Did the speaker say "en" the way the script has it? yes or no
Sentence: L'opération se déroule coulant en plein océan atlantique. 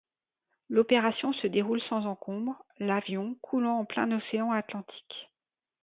yes